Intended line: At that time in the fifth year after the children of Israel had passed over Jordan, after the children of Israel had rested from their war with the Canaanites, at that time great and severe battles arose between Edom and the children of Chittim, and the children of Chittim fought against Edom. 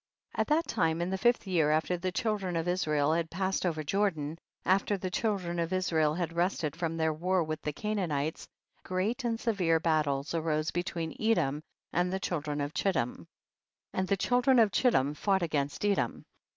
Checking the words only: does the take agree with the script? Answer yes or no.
no